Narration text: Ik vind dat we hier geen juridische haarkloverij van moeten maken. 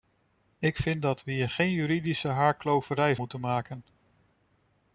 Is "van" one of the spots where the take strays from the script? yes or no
yes